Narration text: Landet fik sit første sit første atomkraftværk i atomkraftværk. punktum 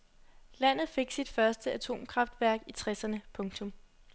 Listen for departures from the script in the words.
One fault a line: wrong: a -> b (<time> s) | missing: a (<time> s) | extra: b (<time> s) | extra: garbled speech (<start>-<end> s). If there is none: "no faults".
missing: sit første (1.7 s)
wrong: atomkraftværk -> tresserne (2.7 s)